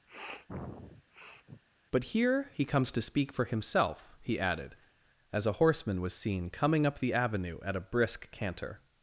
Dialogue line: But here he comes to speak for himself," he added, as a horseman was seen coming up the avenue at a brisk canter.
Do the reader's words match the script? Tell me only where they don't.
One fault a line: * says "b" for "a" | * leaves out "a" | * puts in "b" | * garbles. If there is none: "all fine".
all fine